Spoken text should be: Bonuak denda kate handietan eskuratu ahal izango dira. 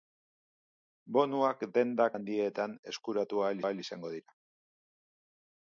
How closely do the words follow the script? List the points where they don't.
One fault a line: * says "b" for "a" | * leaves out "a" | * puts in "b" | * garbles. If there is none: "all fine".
* leaves out "kate"
* puts in "ahal"